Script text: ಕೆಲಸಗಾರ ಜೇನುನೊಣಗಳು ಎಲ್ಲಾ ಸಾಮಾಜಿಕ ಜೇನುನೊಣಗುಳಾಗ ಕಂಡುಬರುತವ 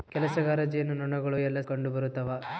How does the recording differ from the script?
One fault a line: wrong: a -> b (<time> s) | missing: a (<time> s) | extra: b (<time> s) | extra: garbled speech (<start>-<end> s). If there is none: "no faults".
missing: ಸಾಮಾಜಿಕ ಜೇನುನೊಣಗುಳಾಗ (1.6 s)